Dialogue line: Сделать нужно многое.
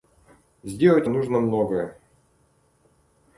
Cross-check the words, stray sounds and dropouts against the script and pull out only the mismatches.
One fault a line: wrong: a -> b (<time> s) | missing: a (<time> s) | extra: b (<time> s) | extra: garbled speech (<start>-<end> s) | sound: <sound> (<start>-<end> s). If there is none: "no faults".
no faults